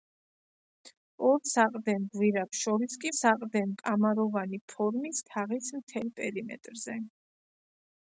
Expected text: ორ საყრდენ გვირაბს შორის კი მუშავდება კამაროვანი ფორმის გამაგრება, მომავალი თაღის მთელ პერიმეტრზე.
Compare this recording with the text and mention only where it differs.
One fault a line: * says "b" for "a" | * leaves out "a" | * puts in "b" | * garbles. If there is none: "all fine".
* says "საყრდენ" for "მუშავდება"
* leaves out "გამაგრება მომავალი"